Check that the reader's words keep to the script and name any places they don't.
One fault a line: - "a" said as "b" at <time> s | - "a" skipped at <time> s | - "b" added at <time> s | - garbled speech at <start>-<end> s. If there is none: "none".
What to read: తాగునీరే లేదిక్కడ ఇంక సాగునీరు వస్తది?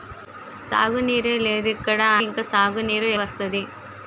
none